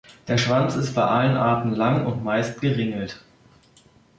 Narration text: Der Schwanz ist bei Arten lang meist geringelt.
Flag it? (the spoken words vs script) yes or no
yes